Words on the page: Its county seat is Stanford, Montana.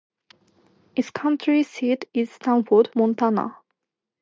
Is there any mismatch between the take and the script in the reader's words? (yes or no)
no